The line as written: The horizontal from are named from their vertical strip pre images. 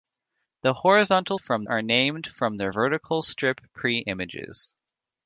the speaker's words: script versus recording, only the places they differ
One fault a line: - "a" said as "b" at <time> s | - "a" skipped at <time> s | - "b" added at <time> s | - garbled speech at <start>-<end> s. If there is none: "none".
none